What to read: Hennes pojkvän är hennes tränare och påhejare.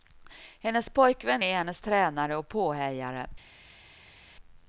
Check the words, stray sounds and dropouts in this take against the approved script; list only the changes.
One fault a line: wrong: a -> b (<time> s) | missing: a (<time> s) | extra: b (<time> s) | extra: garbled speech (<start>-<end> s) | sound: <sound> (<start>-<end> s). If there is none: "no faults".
no faults